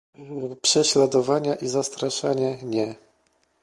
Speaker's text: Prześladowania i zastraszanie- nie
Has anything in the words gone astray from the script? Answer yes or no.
no